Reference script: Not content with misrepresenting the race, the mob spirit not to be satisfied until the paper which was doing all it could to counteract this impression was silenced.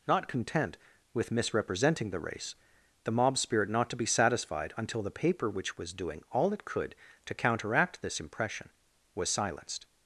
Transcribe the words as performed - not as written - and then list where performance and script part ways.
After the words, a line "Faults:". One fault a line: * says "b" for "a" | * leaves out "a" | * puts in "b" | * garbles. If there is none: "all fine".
Not content with misrepresenting the race, the mob spirit not to be satisfied until the paper which was doing all it could to counteract this impression was silenced.
Faults:
all fine